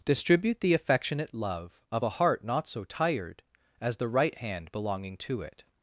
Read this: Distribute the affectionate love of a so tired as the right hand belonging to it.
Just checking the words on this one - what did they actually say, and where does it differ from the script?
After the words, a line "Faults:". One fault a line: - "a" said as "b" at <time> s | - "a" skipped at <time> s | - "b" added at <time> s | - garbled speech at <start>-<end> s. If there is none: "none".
Distribute the affectionate love of a heart not so tired as the right hand belonging to it.
Faults:
- "heart not" added at 2.1 s